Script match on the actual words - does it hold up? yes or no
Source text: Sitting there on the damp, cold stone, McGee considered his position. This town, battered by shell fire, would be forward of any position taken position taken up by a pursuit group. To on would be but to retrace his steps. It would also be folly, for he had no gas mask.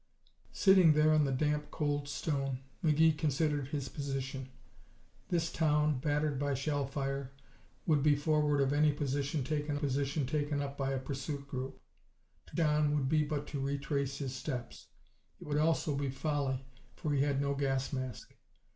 yes